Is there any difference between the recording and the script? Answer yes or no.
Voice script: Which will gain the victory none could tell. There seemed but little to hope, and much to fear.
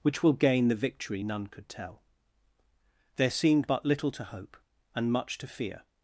no